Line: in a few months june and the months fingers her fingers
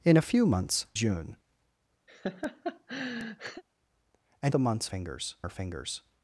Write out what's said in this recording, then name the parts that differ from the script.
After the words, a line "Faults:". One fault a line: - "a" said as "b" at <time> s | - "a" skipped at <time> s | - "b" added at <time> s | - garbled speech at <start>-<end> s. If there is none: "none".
in a few months june and the months fingers her fingers
Faults:
none